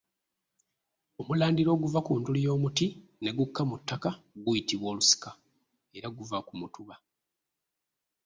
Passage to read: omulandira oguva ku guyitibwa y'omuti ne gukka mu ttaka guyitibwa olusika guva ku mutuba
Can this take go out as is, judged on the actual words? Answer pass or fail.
fail